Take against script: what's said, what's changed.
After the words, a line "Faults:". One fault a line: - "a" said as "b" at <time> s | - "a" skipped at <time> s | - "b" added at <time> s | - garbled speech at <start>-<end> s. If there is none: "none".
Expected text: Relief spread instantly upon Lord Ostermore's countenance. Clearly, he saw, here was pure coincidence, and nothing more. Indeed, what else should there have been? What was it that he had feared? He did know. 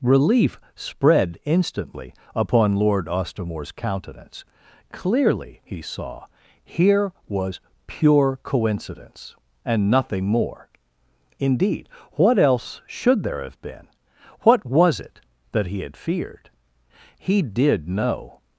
Relief spread instantly upon Lord Ostermore's countenance. Clearly, he saw, here was pure coincidence, and nothing more. Indeed, what else should there have been? What was it that he had feared? He did know.
Faults:
none